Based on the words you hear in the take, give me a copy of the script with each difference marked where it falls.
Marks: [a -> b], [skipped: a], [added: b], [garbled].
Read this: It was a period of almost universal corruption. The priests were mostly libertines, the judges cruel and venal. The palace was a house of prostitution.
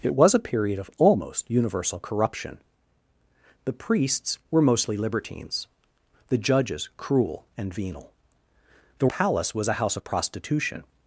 It was a period of almost universal corruption. The priests were mostly libertines, the judges cruel and venal. The palace was a house of prostitution.